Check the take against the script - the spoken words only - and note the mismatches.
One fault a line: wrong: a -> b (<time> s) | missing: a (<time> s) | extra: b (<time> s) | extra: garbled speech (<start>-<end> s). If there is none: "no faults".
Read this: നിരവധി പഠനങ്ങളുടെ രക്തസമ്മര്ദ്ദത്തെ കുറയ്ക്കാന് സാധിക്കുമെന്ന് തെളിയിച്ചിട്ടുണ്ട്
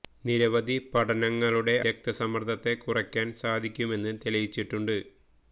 no faults